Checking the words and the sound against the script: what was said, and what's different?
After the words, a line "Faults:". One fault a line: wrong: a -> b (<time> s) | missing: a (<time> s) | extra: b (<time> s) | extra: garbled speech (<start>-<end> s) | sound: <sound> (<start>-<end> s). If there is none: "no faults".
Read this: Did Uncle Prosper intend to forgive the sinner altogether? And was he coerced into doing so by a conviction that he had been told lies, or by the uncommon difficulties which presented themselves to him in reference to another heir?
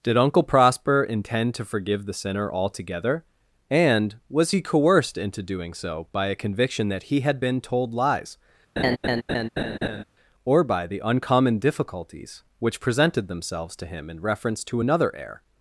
Did Uncle Prosper intend to forgive the sinner altogether? And was he coerced into doing so by a conviction that he had been told lies, or by the uncommon difficulties which presented themselves to him in reference to another heir?
Faults:
sound: laugh (8.8-10.0 s)